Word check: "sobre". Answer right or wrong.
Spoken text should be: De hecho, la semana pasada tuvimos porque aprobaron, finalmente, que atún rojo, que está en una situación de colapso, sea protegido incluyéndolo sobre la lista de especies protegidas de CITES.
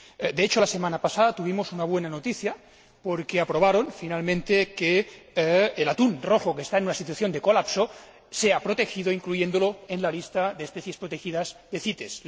wrong